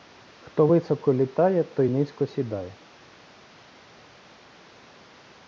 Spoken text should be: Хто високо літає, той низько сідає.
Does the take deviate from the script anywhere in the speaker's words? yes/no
no